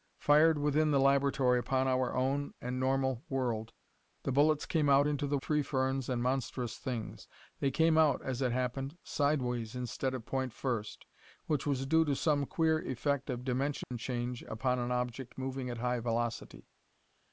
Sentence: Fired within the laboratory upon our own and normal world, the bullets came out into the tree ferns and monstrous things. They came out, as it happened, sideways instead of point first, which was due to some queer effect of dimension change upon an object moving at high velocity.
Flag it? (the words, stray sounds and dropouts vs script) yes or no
yes